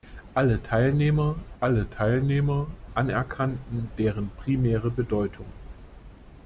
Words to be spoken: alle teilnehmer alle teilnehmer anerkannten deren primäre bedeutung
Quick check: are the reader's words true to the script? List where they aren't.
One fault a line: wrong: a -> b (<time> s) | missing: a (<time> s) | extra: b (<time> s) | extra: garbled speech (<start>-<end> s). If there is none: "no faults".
no faults